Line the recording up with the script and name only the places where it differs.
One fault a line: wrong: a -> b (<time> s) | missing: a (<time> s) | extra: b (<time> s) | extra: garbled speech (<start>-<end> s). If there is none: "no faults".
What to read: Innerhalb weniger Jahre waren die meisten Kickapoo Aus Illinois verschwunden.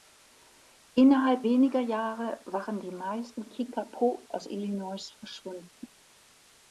no faults